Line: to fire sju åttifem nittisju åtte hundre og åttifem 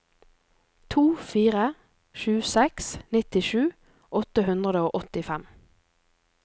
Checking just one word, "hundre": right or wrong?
right